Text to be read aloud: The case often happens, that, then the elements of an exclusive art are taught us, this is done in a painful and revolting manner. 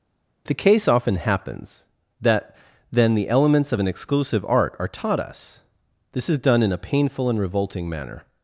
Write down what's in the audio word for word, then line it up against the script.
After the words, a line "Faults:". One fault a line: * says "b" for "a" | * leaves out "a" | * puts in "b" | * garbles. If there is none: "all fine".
The case often happens, that, then the elements of an exclusive art are taught us, this is done in a painful and revolting manner.
Faults:
all fine